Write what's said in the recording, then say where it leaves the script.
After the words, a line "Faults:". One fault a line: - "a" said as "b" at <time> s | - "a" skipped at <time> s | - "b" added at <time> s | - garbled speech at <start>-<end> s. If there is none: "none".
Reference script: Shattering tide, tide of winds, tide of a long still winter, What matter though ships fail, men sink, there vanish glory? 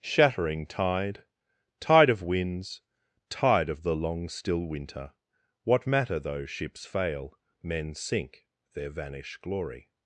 Shattering tide, tide of winds, tide of the long still winter, What matter though ships fail, men sink, there vanish glory?
Faults:
- "a" said as "the" at 3.8 s